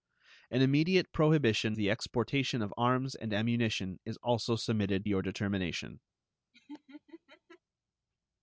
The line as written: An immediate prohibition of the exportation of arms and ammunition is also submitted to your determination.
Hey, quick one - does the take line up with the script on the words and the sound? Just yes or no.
no